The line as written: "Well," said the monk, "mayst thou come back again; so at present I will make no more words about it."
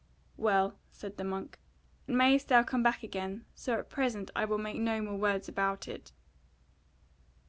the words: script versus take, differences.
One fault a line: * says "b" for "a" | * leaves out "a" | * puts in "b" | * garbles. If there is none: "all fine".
all fine